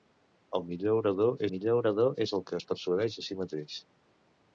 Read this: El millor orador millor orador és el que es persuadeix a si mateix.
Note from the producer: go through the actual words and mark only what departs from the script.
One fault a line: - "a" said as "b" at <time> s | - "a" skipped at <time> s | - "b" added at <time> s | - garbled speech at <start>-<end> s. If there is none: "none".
none